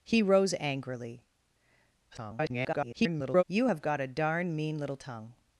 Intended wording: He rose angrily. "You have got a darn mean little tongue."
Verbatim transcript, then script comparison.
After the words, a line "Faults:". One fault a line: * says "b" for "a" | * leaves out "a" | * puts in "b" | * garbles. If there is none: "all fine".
He rose angrily. [garbled] "You have got a darn mean little tongue."
Faults:
* garbles